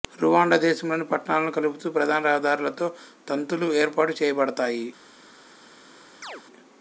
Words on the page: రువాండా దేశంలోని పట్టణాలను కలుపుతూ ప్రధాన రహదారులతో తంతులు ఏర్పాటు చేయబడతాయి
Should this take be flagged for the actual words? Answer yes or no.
no